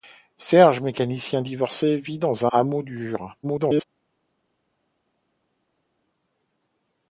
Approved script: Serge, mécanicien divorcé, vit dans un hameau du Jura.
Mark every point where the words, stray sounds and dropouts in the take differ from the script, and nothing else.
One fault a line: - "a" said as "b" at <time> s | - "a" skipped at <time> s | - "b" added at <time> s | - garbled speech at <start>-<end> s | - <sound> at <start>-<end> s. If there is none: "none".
- "un" skipped at 2.5 s
- garbled speech at 3.4-3.8 s